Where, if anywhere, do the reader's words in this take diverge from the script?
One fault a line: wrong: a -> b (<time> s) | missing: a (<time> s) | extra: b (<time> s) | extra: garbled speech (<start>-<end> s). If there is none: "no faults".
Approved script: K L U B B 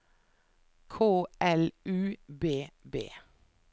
no faults